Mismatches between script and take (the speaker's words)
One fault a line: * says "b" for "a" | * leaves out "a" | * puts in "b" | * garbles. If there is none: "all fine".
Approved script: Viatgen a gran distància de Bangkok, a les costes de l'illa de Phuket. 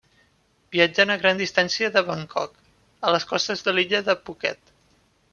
all fine